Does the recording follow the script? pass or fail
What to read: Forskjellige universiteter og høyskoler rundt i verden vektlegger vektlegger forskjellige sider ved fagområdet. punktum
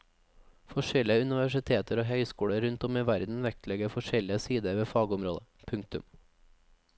fail